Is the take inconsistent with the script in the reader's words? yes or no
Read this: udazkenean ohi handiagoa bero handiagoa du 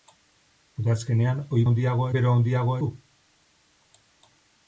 no